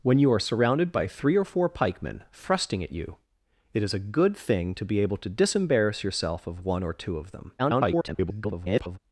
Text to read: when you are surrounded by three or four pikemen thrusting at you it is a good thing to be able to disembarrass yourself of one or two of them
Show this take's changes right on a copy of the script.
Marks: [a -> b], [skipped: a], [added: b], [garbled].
when you are surrounded by three or four pikemen thrusting at you it is a good thing to be able to disembarrass yourself of one or two of them [garbled]